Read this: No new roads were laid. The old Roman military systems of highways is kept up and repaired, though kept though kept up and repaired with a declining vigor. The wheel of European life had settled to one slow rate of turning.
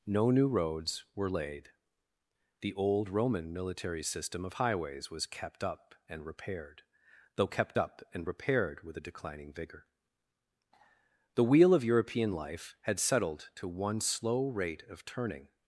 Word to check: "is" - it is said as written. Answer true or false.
false